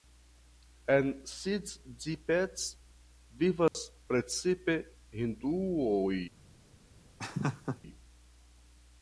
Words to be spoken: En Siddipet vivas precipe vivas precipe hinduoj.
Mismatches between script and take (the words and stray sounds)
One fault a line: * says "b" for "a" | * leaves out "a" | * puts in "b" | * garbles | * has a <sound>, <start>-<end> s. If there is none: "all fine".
* has a dropout, 3.7-3.7 s
* leaves out "vivas precipe"
* has a laugh, 7.2-7.8 s